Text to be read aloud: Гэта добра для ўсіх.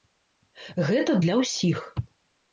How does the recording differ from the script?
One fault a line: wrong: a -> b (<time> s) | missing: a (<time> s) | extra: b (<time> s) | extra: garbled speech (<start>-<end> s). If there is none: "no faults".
missing: добра (1.2 s)